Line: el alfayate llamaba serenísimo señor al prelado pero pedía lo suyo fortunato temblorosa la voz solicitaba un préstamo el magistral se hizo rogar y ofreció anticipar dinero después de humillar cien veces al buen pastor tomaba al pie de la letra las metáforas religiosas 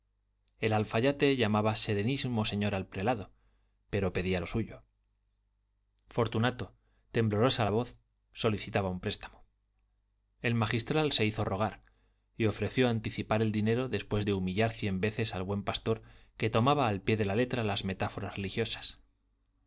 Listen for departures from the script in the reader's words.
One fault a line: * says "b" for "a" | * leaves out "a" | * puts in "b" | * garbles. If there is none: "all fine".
* puts in "el"
* puts in "que"